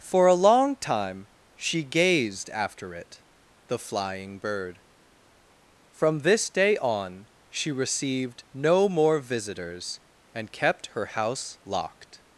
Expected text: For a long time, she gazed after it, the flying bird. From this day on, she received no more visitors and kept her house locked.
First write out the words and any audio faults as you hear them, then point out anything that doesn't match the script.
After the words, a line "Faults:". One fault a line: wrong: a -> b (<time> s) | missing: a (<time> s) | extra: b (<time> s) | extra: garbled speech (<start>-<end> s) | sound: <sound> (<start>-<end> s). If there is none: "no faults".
For a long time, she gazed after it, the flying bird. From this day on, she received no more visitors and kept her house locked.
Faults:
no faults